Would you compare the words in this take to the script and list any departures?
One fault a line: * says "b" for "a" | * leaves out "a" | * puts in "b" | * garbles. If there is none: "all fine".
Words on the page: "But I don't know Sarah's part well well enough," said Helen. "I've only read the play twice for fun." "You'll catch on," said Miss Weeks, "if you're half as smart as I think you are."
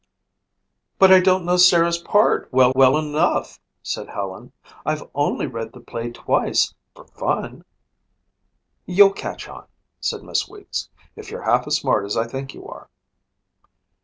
all fine